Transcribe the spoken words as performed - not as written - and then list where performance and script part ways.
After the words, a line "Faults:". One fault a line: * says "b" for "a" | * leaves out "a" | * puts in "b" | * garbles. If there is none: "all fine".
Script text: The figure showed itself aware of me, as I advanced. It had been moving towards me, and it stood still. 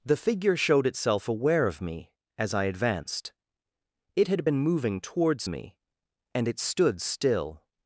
The figure showed itself aware of me, as I advanced. It had been moving towards me, and it stood still.
Faults:
all fine